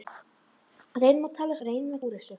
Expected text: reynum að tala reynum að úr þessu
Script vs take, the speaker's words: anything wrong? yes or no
no